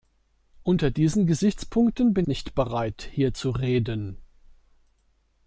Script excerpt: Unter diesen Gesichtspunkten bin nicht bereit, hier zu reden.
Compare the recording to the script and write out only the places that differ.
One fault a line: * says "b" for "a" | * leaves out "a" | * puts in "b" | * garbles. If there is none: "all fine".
all fine